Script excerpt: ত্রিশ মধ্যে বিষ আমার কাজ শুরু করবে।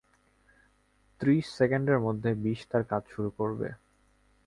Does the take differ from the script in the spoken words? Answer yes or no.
yes